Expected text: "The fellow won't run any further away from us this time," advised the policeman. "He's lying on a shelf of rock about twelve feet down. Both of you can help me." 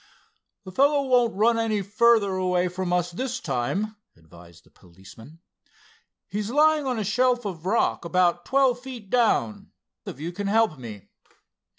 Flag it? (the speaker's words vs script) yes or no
yes